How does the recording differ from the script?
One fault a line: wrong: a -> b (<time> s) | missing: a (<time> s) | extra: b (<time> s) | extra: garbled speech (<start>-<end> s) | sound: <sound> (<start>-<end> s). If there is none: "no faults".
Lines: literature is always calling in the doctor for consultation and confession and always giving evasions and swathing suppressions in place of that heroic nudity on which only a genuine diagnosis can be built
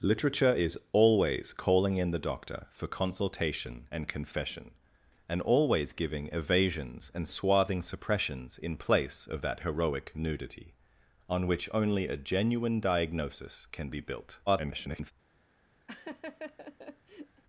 extra: garbled speech (14.5-15.1 s)
sound: laugh (15.9-17.4 s)